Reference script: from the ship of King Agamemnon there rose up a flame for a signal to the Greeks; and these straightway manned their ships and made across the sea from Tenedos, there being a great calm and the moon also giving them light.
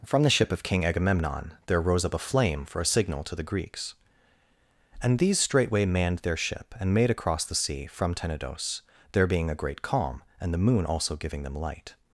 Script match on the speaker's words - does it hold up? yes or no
no